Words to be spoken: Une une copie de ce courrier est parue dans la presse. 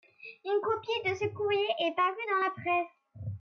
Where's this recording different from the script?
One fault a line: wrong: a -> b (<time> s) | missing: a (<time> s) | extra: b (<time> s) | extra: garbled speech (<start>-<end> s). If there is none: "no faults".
missing: une (0.6 s)